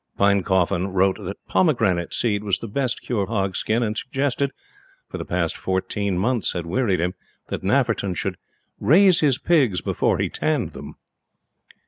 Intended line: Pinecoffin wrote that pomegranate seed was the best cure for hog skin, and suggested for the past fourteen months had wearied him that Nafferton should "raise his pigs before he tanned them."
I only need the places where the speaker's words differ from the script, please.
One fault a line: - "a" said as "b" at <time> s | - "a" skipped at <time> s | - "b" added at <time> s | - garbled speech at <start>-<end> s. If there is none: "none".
- "for" skipped at 3.3 s